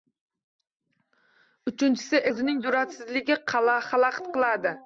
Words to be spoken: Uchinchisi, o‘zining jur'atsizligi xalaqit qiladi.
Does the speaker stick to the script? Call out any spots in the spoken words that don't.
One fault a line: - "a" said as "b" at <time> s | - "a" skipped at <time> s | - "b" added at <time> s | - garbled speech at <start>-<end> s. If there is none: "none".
none